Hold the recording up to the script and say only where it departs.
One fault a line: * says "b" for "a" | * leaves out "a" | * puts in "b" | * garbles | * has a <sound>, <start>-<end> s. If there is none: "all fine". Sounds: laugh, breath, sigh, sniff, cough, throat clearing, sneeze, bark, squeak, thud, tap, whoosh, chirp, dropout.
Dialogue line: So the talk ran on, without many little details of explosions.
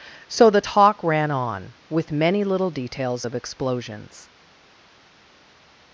* says "with" for "without"